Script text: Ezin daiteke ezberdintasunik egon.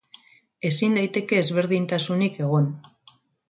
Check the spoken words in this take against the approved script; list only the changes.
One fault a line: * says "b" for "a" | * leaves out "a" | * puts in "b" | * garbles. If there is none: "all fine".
all fine